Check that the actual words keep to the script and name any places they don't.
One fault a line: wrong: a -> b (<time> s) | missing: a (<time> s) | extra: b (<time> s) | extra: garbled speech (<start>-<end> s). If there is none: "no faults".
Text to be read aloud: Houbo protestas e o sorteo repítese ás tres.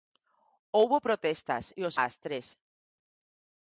missing: sorteo repítese (1.9 s)